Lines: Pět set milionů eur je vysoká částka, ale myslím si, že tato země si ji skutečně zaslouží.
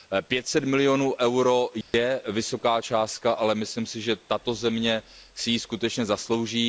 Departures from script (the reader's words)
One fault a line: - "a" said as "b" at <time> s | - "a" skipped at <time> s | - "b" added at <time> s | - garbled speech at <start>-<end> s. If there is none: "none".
none